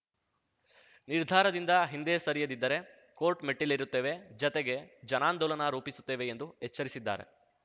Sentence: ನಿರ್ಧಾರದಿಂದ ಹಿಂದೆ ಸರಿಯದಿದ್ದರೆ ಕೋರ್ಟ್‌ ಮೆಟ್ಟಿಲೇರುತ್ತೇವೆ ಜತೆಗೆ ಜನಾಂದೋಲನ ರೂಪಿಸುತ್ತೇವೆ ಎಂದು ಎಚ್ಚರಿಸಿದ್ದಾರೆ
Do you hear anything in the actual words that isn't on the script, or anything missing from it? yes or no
no